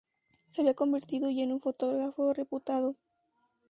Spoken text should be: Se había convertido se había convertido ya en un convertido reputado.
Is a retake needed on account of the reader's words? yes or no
yes